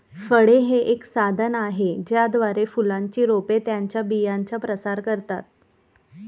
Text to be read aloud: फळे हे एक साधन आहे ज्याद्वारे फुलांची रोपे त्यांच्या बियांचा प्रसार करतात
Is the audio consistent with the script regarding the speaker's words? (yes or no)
yes